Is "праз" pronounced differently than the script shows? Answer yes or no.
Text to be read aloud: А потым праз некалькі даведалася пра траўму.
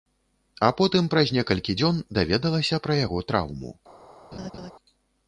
no